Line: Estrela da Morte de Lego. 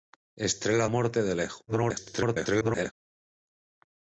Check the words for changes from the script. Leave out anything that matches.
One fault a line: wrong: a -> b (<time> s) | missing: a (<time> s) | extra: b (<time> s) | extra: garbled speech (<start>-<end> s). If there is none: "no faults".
missing: da (0.9 s)
extra: garbled speech (1.7-2.9 s)